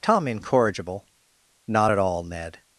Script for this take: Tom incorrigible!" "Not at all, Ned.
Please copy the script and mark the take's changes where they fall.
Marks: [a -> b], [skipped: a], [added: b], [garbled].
Tom incorrigible!" "Not at all, Ned.